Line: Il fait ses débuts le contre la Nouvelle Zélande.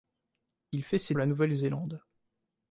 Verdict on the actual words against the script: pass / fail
fail